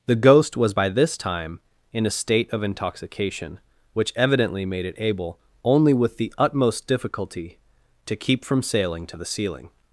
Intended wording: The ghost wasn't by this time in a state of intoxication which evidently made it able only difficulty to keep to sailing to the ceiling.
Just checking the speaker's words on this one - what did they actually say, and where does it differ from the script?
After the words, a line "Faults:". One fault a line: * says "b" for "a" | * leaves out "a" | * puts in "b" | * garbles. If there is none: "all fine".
The ghost was by this time in a state of intoxication which evidently made it able only with the utmost difficulty to keep from sailing to the ceiling.
Faults:
* says "was" for "wasn't"
* puts in "with the utmost"
* says "from" for "to"